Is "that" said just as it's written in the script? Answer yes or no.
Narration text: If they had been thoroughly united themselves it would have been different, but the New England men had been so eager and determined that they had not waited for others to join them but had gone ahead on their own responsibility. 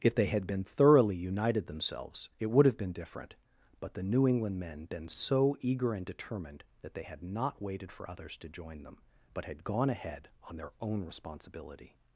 yes